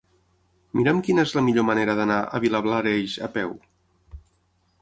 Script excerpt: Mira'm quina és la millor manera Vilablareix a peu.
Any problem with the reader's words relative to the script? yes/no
yes